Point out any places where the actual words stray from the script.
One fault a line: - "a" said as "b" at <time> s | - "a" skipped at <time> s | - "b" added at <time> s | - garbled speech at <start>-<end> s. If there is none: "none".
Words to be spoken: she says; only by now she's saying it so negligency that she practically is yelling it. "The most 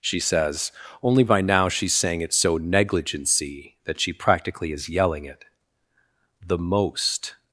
none